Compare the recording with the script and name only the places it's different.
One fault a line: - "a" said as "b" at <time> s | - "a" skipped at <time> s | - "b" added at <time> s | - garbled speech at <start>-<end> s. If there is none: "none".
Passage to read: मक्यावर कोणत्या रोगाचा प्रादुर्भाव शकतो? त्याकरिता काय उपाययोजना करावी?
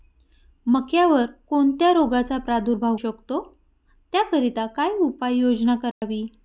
none